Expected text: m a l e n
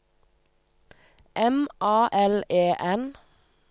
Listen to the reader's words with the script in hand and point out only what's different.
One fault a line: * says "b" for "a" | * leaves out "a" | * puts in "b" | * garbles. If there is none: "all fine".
all fine